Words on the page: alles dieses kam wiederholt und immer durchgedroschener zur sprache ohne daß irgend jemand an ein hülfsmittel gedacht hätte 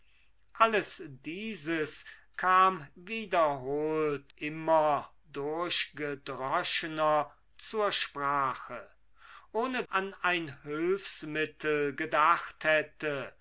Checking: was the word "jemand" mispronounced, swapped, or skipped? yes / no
yes